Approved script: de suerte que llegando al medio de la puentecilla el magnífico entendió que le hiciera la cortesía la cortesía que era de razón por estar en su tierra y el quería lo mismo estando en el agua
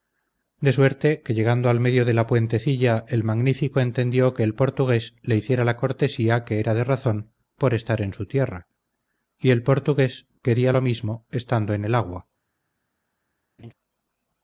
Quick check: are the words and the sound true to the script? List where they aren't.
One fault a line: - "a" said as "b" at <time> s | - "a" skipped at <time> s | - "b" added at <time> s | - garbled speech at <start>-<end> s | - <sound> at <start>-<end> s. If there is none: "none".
- "el portugués" added at 4.4 s
- "la cortesía" skipped at 6.4 s
- "portugués" added at 9.6 s
- laugh at 13.6-13.7 s